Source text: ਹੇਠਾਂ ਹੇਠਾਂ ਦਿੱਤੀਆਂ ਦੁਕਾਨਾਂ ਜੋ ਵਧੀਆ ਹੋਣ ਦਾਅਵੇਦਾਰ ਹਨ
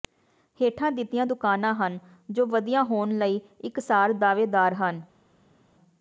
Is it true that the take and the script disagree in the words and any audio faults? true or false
true